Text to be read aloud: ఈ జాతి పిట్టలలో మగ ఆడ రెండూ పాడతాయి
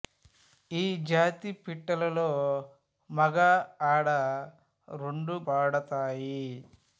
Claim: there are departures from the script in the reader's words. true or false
false